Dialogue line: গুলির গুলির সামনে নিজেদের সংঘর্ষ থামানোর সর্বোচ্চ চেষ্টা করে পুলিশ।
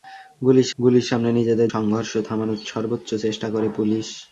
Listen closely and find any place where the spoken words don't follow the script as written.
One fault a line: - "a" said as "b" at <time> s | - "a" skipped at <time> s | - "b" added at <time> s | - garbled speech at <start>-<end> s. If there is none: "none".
none